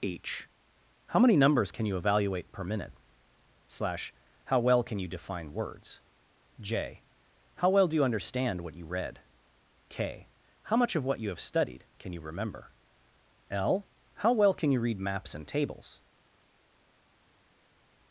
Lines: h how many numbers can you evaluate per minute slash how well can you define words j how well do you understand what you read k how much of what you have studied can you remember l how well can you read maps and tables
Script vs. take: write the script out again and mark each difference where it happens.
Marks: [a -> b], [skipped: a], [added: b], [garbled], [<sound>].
h how many numbers can you evaluate per minute slash how well can you define words j how well do you understand what you read k how much of what you have studied can you remember l how well can you read maps and tables